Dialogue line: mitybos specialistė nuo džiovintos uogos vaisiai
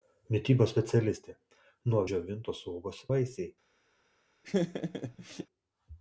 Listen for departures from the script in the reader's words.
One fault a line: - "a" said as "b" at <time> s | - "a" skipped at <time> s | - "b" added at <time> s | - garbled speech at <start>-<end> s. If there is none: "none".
none